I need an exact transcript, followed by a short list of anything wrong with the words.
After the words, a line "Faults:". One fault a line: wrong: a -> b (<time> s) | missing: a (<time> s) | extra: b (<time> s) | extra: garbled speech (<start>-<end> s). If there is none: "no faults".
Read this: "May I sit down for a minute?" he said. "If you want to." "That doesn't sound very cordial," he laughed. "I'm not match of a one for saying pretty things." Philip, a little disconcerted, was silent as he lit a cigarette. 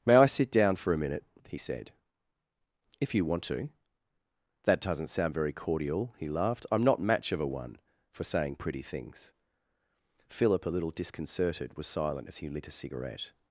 "May I sit down for a minute?" he said. "If you want to." "That doesn't sound very cordial," he laughed. "I'm not match of a one for saying pretty things." Philip, a little disconcerted, was silent as he lit a cigarette.
Faults:
no faults